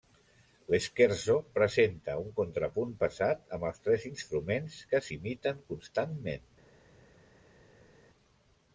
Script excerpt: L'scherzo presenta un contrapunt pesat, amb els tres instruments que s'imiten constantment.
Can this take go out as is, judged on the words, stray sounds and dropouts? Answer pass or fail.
pass